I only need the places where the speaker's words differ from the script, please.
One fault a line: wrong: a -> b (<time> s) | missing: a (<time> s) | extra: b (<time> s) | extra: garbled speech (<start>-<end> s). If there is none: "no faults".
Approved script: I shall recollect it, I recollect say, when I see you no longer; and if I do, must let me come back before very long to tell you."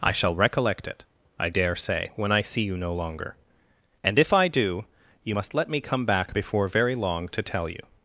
wrong: recollect -> dare (1.5 s)
extra: you (5.2 s)